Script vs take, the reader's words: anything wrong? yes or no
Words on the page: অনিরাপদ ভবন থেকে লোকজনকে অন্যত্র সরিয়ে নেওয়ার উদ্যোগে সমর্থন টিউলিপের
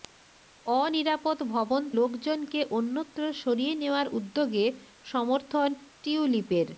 yes